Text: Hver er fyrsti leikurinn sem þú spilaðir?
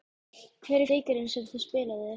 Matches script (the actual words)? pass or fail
fail